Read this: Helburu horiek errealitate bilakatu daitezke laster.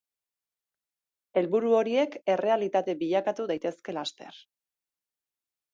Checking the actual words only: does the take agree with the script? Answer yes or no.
yes